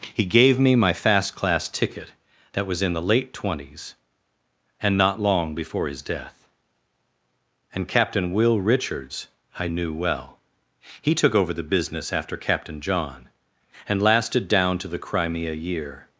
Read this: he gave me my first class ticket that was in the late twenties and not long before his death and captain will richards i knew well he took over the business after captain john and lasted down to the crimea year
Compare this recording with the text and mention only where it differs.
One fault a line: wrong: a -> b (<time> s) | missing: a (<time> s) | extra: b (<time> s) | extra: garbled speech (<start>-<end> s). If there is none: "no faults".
wrong: first -> fast (0.9 s)